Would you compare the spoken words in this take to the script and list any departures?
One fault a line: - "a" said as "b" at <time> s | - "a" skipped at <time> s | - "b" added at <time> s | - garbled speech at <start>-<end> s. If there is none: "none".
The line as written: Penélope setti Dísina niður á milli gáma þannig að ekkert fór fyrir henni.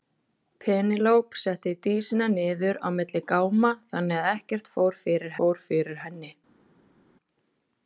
- "fór fyrir" added at 5.4 s